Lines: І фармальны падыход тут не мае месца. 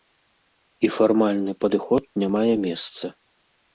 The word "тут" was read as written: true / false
false